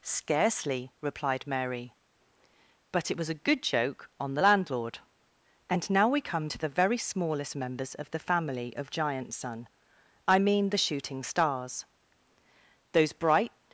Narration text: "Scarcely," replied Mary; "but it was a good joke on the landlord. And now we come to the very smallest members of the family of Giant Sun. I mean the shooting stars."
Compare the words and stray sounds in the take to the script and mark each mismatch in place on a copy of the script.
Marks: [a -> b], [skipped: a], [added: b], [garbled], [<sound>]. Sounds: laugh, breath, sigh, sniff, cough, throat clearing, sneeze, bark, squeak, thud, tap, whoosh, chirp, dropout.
"Scarcely," replied Mary; "but it was a good joke on the landlord. And now we come to the very smallest members of the family of Giant Sun. I mean the shooting stars." [added: Those bright]